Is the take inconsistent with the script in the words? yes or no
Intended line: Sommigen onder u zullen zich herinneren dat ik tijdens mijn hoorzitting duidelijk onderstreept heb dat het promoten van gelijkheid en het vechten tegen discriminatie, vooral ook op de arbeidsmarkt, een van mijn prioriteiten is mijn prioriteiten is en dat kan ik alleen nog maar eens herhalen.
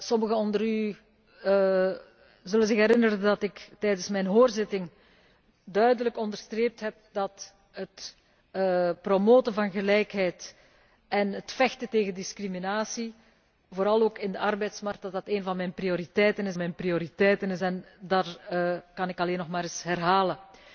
no